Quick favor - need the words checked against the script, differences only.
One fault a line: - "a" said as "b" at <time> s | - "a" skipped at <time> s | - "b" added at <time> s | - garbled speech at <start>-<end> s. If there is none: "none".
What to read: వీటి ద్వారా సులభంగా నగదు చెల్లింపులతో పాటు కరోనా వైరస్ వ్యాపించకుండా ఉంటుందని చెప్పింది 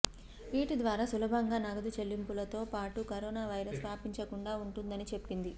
none